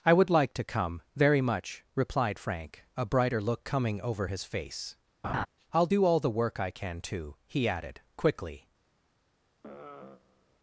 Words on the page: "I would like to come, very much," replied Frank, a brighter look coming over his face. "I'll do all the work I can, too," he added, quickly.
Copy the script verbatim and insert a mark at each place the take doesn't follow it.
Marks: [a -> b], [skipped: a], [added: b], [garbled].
"I would like to come, very much," replied Frank, a brighter look coming over his face. "I'll do all the work I can, too," he added, quickly.